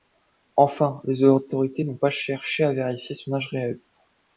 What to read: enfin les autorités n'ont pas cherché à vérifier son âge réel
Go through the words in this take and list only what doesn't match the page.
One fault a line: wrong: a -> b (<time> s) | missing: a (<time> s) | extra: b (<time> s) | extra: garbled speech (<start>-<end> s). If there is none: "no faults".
no faults